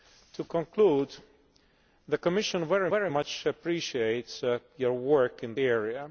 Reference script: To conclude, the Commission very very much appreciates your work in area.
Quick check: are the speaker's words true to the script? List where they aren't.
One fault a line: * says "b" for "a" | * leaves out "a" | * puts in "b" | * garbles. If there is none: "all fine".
all fine